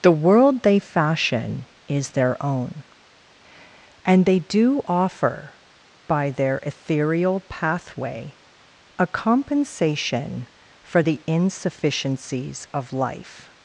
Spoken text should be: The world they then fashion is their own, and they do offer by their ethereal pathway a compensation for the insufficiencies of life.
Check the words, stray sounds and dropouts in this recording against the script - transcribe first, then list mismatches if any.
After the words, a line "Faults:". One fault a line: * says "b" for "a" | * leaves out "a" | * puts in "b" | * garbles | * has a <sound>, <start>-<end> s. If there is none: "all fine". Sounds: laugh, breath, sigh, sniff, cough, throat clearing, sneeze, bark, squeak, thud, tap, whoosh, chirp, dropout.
The world they fashion is their own, and they do offer by their ethereal pathway a compensation for the insufficiencies of life.
Faults:
* leaves out "then"